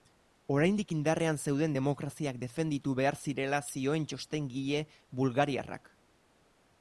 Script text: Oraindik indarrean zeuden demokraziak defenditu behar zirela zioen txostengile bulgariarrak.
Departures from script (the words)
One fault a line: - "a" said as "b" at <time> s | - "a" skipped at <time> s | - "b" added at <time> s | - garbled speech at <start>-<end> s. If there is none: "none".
none